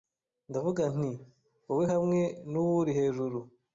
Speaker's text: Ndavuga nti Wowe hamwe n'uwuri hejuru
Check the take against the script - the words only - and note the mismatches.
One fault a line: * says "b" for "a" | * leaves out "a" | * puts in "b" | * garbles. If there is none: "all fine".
all fine